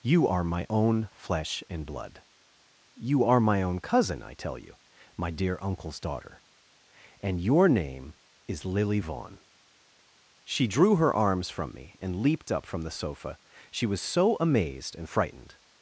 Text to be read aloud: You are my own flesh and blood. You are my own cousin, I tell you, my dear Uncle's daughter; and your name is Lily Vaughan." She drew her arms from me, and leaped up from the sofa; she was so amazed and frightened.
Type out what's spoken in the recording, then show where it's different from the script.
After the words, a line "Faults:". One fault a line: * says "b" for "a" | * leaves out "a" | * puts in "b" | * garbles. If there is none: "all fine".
You are my own flesh and blood. You are my own cousin, I tell you, my dear Uncle's daughter; and your name is Lily Vaughan." She drew her arms from me, and leaped up from the sofa; she was so amazed and frightened.
Faults:
all fine